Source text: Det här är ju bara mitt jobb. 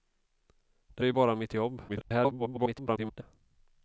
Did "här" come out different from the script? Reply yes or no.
yes